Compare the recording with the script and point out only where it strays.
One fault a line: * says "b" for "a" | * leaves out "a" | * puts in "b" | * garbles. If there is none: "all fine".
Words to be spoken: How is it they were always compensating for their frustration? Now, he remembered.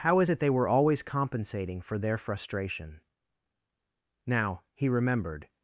all fine